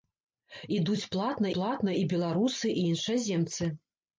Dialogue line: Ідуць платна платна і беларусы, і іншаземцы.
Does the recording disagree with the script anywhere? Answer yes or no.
no